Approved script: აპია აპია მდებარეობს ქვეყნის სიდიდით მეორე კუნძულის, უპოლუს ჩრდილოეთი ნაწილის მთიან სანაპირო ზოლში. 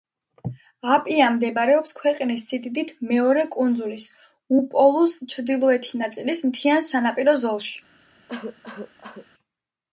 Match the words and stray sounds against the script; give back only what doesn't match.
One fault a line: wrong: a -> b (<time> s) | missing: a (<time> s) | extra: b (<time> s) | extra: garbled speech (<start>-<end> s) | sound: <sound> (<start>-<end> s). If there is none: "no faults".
missing: აპია (1.2 s)
sound: cough (8.3-9.3 s)